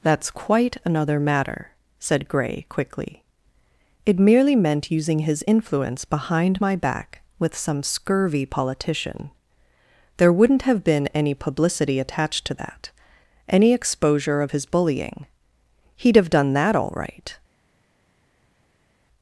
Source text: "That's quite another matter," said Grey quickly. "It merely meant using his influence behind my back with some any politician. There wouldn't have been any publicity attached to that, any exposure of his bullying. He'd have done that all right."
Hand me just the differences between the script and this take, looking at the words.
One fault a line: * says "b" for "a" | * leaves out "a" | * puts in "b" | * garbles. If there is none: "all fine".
* says "scurvy" for "any"